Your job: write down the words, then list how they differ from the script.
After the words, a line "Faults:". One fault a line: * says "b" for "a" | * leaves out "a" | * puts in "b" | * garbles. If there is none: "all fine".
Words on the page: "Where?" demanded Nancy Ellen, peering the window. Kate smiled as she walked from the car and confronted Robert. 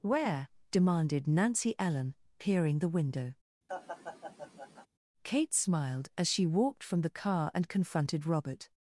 "Where?" demanded Nancy Ellen, peering the window. Kate smiled as she walked from the car and confronted Robert.
Faults:
all fine